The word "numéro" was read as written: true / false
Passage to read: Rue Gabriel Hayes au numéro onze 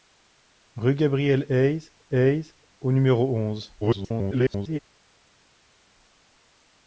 true